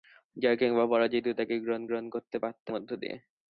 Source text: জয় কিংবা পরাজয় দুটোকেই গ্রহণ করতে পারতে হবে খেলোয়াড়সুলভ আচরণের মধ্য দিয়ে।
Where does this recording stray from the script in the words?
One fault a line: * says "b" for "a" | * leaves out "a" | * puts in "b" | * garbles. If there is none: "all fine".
* puts in "গ্রহণ"
* leaves out "হবে খেলোয়াড়সুলভ আচরণের"